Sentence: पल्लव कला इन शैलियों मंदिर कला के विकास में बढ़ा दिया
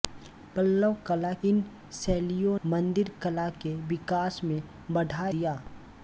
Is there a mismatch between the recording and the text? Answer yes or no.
no